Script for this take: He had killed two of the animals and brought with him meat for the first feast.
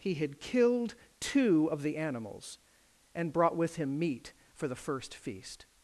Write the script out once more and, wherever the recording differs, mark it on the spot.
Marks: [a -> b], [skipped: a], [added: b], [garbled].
He had killed two of the animals and brought with him meat for the first feast.